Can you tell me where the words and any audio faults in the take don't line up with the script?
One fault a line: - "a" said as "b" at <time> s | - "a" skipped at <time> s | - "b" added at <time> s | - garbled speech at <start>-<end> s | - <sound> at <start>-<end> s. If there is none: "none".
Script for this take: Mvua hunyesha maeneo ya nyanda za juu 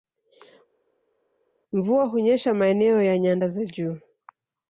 none